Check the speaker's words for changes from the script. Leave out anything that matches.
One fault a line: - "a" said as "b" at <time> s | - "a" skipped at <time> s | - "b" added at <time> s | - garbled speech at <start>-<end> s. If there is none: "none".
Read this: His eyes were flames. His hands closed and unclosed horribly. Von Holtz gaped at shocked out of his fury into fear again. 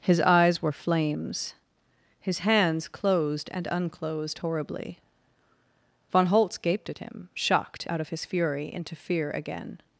- "him" added at 7.0 s